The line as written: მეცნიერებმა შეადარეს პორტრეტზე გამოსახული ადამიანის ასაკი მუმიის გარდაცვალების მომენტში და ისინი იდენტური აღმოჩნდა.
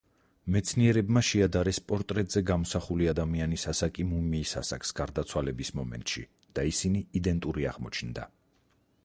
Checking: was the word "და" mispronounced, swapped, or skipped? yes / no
no